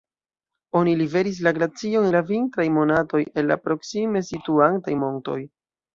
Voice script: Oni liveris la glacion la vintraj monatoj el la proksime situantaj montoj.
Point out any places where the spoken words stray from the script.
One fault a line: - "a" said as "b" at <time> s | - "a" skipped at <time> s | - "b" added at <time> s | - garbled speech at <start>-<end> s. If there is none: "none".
none